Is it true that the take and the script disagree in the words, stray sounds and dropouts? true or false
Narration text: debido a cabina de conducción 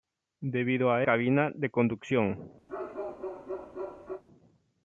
true